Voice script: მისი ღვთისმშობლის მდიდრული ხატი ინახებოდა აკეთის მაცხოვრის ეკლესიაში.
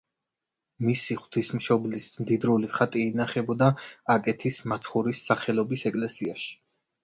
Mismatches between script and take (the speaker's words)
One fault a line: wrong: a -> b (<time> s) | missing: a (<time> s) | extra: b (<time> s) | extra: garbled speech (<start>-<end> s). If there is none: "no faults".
extra: სახელობის (5.3 s)